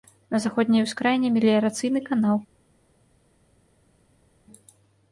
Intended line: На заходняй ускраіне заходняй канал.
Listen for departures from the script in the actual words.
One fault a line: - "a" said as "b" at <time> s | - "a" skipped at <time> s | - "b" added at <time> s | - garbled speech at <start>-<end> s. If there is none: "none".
- "заходняй" said as "меліярацыйны" at 1.4 s